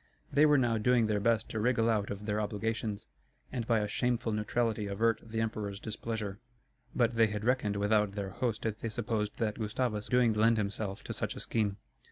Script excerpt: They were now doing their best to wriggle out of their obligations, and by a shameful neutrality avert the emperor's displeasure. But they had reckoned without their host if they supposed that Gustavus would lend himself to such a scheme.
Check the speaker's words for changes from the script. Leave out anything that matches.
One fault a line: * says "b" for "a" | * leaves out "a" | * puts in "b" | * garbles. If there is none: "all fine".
* says "doing" for "would"